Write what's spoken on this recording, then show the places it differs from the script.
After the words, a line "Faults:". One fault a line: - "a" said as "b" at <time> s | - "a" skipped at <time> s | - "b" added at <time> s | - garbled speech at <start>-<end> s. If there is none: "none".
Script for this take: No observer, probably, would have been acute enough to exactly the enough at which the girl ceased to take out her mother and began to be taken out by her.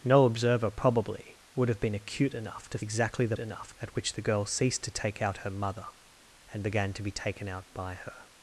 No observer, probably, would have been acute enough to exactly the enough at which the girl ceased to take out her mother and began to be taken out by her.
Faults:
none